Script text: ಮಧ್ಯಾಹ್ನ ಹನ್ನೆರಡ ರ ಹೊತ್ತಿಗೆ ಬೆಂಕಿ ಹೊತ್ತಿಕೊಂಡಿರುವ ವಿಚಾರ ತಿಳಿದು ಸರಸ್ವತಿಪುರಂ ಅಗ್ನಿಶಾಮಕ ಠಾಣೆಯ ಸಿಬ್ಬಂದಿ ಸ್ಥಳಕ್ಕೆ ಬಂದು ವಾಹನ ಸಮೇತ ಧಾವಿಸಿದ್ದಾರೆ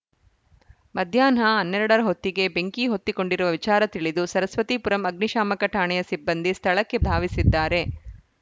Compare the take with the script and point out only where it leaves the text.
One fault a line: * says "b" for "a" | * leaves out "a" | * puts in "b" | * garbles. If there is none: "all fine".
* leaves out "ಬಂದು ವಾಹನ ಸಮೇತ"